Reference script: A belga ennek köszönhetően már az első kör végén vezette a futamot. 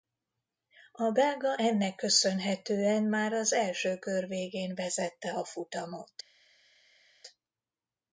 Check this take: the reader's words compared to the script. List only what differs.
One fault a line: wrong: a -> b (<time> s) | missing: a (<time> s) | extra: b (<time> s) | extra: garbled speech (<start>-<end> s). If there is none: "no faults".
no faults